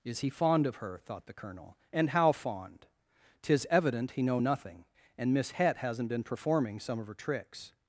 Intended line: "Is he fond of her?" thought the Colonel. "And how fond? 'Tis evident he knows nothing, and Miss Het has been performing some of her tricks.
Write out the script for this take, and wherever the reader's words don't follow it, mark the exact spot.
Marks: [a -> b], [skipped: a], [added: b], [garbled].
"Is he fond of her?" thought the Colonel. "And how fond? 'Tis evident he [knows -> know] nothing, and Miss Het [has -> hasn't] been performing some of her tricks.